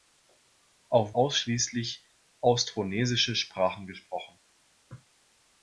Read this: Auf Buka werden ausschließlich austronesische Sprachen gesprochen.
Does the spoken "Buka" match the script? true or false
false